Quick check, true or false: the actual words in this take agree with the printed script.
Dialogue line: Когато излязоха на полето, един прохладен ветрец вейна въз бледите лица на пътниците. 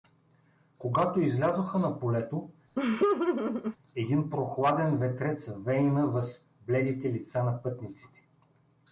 true